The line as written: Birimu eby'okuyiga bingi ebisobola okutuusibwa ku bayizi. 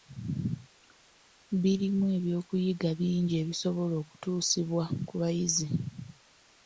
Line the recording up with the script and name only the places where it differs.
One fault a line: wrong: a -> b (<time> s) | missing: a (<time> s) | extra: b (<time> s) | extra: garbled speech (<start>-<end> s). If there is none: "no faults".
no faults